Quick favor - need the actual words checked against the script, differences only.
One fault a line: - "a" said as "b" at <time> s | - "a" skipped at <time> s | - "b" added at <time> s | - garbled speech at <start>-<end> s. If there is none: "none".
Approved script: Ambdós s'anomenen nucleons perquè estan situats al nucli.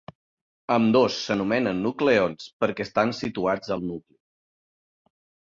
none